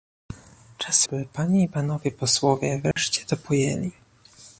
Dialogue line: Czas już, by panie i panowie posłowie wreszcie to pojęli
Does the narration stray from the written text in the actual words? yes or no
yes